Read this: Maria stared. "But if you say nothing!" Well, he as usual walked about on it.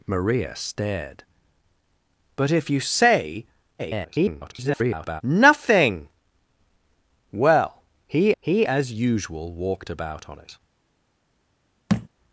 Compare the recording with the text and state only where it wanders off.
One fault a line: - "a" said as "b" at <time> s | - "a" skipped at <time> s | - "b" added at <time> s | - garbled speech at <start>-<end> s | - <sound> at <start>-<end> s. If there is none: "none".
- garbled speech at 3.8-5.2 s
- "he" added at 8.4 s
- thud at 11.9-12.1 s